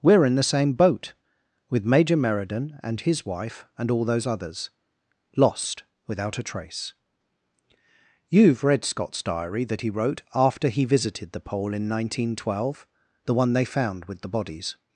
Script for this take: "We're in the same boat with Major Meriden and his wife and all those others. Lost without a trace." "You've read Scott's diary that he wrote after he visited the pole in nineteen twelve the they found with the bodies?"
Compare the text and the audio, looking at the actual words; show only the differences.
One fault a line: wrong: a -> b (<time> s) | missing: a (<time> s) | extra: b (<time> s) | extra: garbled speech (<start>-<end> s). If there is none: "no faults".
extra: one (13.3 s)